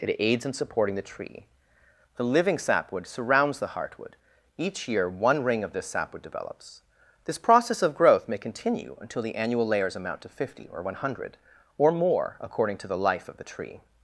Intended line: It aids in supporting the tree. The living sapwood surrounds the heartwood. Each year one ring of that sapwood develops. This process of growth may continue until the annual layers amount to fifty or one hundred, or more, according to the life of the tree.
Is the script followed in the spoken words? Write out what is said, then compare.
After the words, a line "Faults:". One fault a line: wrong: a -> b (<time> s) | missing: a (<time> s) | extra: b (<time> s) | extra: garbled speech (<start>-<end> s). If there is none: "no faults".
It aids in supporting the tree. The living sapwood surrounds the heartwood. Each year one ring of this sapwood develops. This process of growth may continue until the annual layers amount to fifty or one hundred, or more, according to the life of the tree.
Faults:
wrong: that -> this (5.7 s)